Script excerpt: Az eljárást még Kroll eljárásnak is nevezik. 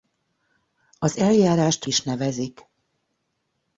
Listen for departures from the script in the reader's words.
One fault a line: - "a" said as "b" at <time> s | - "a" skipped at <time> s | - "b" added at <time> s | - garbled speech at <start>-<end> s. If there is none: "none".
- "még Kroll eljárásnak" skipped at 1.9 s